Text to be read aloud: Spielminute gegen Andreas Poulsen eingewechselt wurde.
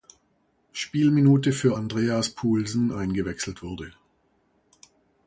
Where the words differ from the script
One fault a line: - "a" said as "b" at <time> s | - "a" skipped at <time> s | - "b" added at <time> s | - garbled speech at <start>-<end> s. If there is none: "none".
- "gegen" said as "für" at 1.5 s